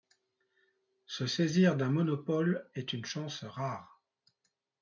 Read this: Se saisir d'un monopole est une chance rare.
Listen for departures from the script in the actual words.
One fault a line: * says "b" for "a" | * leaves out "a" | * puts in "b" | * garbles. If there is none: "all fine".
all fine